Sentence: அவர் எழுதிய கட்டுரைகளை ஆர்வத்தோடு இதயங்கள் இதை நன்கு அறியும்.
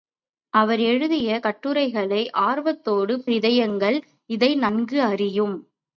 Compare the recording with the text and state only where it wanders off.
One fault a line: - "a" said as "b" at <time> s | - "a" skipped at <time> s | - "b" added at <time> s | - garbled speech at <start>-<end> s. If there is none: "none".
none